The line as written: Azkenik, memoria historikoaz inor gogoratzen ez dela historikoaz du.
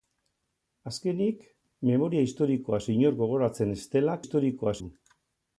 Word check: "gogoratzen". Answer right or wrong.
right